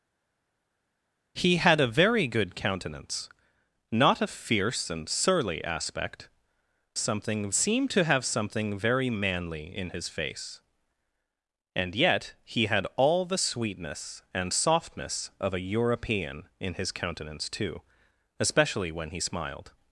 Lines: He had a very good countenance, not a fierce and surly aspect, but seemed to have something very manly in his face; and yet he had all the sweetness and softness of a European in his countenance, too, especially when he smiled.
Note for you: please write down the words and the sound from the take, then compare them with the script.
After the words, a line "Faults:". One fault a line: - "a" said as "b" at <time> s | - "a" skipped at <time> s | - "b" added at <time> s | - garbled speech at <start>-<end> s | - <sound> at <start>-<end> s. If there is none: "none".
He had a very good countenance, not a fierce and surly aspect, something seemed to have something very manly in his face; and yet he had all the sweetness and softness of a European in his countenance, too, especially when he smiled.
Faults:
- "but" said as "something" at 7.0 s